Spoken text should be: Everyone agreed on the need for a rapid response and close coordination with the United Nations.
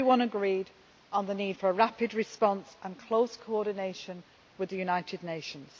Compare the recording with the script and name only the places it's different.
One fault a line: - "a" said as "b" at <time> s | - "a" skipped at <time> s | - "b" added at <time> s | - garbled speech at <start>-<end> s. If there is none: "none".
none